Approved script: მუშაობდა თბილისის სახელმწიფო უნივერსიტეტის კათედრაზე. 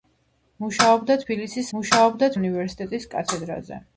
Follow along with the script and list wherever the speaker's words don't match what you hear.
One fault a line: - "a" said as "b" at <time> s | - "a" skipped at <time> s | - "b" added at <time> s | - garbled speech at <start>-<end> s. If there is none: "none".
- "სახელმწიფო" said as "მუშაობდა" at 1.8 s